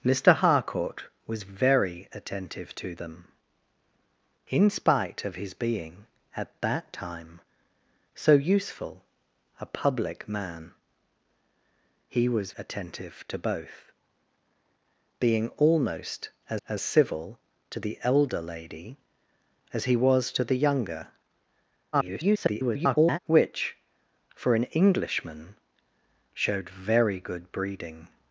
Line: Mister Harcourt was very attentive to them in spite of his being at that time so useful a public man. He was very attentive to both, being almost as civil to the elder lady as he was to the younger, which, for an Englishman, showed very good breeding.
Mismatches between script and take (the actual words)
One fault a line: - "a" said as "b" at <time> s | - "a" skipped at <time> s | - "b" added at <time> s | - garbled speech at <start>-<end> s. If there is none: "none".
- "very" skipped at 12.5 s
- "as" added at 16.7 s
- garbled speech at 21.9-23.2 s